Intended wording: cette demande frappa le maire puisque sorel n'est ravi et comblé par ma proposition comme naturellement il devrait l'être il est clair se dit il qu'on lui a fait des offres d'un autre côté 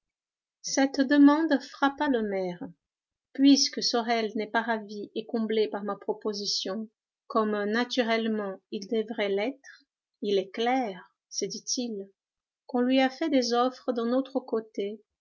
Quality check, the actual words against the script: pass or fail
fail